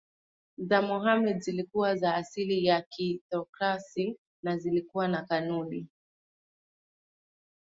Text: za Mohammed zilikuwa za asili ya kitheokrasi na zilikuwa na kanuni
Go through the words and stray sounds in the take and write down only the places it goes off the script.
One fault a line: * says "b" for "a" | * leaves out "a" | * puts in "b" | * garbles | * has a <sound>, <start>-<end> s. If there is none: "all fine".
all fine